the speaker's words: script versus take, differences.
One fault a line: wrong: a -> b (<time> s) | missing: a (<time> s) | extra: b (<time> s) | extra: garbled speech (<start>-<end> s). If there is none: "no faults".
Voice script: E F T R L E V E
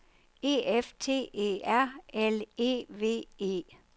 extra: E (1.3 s)